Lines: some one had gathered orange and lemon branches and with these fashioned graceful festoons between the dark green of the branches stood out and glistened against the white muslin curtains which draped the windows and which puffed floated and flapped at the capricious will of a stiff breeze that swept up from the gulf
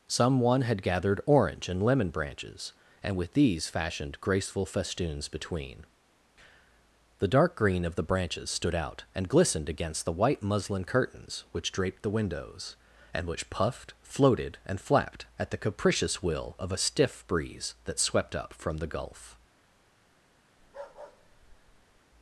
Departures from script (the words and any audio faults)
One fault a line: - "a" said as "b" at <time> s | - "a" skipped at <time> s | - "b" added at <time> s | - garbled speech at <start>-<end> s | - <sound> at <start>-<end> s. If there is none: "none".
- bark at 20.6-22.0 s